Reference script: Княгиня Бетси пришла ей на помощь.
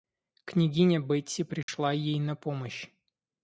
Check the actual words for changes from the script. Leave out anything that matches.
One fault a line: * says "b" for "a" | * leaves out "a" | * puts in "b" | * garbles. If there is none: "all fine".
all fine